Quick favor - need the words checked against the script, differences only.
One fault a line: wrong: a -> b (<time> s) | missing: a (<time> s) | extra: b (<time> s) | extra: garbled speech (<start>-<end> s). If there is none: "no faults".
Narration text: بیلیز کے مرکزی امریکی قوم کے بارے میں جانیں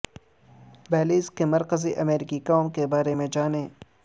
no faults